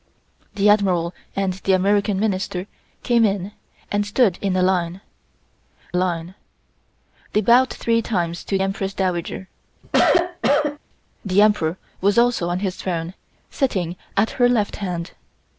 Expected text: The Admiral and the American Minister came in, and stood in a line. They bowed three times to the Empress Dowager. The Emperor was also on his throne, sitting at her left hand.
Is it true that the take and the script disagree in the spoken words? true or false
true